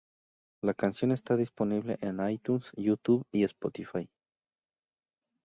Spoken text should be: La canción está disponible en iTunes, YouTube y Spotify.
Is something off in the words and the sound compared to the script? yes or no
no